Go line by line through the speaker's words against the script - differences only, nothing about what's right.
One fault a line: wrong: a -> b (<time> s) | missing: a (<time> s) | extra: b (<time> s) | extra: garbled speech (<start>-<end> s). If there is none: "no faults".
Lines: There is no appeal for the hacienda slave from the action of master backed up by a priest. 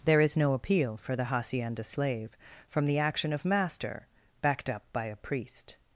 no faults